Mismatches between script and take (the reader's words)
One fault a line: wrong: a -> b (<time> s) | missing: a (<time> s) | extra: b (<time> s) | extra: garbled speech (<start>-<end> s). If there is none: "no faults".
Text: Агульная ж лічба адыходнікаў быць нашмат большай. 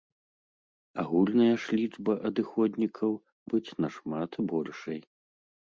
no faults